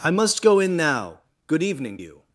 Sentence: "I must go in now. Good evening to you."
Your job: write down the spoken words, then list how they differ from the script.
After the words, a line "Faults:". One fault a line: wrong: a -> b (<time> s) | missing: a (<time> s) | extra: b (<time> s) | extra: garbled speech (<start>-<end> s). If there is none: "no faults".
"I must go in now. Good evening you."
Faults:
missing: to (2.0 s)